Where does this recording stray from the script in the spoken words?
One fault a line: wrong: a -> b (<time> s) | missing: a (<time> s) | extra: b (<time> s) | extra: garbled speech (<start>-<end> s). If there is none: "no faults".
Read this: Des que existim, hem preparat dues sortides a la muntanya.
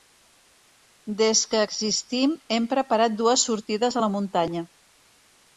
no faults